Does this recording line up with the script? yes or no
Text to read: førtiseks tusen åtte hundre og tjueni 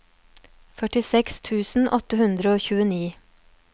yes